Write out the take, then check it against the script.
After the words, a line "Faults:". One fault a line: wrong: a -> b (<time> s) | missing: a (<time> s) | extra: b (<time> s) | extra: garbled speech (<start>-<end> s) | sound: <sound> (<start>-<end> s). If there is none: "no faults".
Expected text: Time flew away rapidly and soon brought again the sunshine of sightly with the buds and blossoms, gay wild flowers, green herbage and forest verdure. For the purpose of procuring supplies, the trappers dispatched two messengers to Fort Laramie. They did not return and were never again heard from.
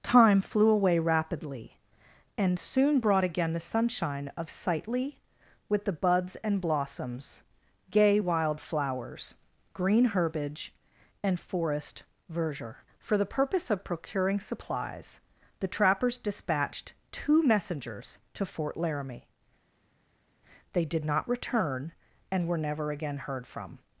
Time flew away rapidly and soon brought again the sunshine of sightly with the buds and blossoms, gay wild flowers, green herbage and forest verdure. For the purpose of procuring supplies, the trappers dispatched two messengers to Fort Laramie. They did not return and were never again heard from.
Faults:
no faults